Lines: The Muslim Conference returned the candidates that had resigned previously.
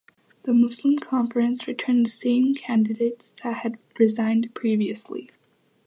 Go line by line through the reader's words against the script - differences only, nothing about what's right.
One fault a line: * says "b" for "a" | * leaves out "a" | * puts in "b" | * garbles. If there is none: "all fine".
* puts in "same"